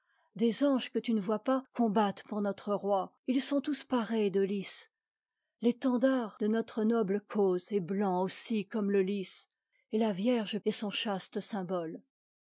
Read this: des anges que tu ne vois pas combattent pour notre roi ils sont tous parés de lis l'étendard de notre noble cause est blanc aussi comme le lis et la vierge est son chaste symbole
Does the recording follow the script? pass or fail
pass